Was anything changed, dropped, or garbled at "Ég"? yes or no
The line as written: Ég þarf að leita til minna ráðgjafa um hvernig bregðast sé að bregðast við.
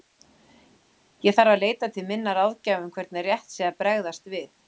no